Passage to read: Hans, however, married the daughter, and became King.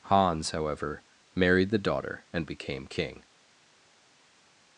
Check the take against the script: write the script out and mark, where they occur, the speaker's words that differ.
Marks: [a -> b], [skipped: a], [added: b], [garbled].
Hans, however, married the daughter, and became King.